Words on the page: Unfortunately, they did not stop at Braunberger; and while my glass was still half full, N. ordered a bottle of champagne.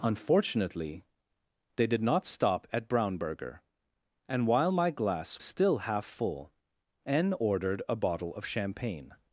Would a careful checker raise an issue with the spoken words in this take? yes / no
yes